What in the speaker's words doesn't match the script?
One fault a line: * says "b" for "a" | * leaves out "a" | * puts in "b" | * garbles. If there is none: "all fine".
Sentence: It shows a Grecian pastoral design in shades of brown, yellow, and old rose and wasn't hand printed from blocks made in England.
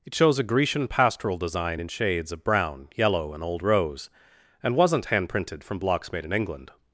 all fine